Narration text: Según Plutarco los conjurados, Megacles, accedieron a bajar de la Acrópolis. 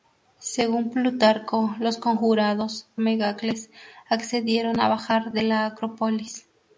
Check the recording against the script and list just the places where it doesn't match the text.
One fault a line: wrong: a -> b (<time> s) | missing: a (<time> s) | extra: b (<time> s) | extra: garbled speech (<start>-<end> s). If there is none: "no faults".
no faults